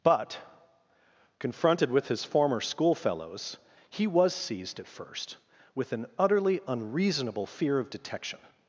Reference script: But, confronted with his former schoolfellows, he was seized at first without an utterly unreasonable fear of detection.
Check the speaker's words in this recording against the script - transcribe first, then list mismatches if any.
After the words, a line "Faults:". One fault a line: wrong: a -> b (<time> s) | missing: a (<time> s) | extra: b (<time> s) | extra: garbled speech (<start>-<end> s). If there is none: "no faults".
But, confronted with his former schoolfellows, he was seized at first with an utterly unreasonable fear of detection.
Faults:
wrong: without -> with (5.7 s)